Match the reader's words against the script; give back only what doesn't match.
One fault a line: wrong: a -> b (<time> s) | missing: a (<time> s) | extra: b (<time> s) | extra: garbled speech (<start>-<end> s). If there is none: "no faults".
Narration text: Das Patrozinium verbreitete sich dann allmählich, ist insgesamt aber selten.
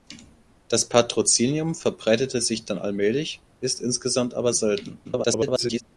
extra: garbled speech (5.0-5.8 s)